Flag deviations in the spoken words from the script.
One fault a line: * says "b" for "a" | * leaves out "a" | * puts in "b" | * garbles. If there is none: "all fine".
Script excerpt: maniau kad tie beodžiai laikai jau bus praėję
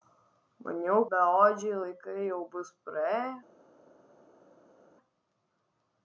* leaves out "kad tie"